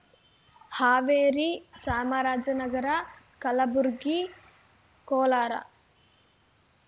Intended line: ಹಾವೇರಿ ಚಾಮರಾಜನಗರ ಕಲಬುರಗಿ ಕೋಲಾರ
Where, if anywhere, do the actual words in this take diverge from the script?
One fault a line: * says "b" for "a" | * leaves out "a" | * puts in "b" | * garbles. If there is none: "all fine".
all fine